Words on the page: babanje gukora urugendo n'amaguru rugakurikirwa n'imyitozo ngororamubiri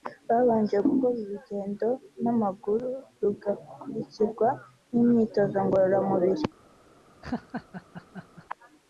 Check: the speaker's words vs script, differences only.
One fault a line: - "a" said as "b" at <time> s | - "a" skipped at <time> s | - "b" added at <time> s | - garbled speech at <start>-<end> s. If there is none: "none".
none